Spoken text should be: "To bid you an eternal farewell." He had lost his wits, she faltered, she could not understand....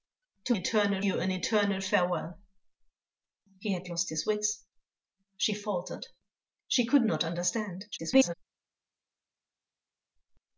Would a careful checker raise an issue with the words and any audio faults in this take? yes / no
yes